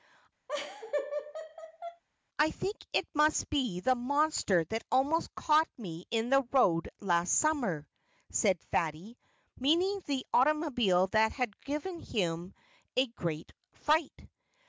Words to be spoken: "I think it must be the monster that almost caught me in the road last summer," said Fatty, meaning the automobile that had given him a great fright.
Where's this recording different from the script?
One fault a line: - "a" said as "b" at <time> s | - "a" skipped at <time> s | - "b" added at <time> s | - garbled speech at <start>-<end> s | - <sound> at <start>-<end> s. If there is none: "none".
- laugh at 0.5-2.0 s